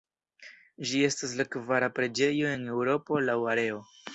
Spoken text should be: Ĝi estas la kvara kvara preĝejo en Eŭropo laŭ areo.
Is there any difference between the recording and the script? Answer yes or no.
yes